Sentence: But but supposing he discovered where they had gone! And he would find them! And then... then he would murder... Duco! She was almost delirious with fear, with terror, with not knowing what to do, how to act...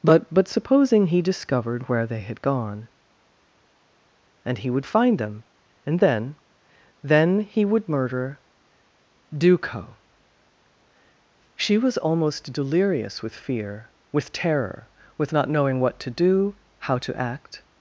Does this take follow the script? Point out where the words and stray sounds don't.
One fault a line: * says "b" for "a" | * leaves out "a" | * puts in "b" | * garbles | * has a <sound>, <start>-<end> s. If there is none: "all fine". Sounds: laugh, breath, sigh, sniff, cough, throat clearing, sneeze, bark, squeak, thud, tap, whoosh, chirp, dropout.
all fine